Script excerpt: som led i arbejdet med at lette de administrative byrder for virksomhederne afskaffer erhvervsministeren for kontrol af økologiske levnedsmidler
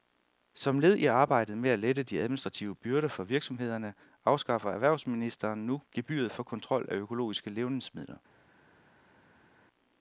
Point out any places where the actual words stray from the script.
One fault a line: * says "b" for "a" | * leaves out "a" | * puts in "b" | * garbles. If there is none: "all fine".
* puts in "nu gebyret"